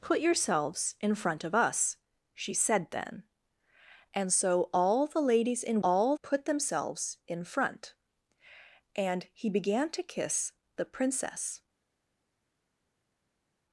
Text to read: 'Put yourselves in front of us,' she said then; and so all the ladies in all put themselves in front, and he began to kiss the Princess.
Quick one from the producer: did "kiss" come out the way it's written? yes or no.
yes